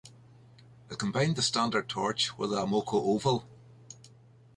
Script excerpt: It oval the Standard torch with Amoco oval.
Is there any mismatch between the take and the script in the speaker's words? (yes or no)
yes